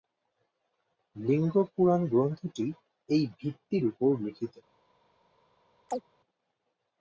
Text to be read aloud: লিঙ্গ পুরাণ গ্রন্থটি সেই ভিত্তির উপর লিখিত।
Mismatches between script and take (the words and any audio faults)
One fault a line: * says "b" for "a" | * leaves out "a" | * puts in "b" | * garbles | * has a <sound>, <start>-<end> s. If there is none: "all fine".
* says "এই" for "সেই"
* has a chirp, 5.9-6.0 s